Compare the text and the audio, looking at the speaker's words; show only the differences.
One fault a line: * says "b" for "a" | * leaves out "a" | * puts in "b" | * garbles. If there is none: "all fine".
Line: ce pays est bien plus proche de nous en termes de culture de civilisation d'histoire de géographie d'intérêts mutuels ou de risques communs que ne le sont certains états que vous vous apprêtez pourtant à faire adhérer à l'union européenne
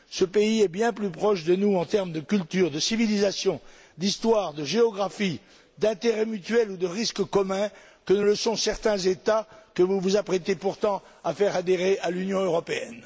all fine